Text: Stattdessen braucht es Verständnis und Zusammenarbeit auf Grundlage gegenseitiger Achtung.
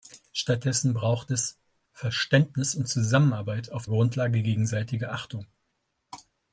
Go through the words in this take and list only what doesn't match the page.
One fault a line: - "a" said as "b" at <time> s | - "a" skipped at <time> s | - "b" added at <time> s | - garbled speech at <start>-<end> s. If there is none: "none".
none